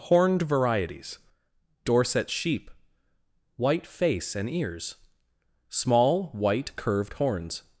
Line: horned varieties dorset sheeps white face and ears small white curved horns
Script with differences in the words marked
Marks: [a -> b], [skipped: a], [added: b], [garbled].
horned varieties dorset [sheeps -> sheep] white face and ears small white curved horns